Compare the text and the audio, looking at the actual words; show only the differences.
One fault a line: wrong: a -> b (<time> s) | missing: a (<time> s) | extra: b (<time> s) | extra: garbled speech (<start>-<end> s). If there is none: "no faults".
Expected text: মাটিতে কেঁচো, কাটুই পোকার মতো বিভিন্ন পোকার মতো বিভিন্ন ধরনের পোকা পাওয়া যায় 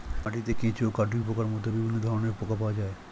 missing: পোকার মতো বিভিন্ন (1.9 s)